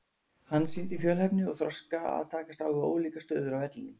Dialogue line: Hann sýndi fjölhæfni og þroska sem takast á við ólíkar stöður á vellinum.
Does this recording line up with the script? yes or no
no